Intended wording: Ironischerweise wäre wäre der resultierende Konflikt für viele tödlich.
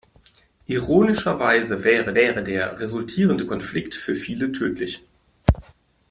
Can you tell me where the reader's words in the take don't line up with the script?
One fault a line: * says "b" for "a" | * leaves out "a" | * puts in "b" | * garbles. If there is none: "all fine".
all fine